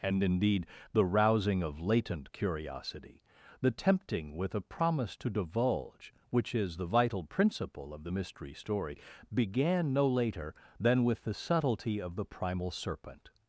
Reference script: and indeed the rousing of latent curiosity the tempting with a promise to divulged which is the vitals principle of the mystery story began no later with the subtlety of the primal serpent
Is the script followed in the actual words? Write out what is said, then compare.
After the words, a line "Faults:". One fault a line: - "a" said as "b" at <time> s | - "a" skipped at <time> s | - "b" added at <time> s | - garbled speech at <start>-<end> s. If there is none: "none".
and indeed the rousing of latent curiosity the tempting with a promise to divulge which is the vital principle of the mystery story began no later than with the subtlety of the primal serpent
Faults:
- "divulged" said as "divulge" at 5.3 s
- "vitals" said as "vital" at 6.8 s
- "than" added at 10.8 s